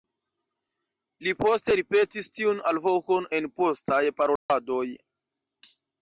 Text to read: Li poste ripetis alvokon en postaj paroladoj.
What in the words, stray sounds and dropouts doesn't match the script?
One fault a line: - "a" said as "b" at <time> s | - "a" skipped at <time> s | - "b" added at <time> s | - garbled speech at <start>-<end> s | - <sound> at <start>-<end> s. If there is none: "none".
- "tiun" added at 2.4 s
- dropout at 4.4-4.5 s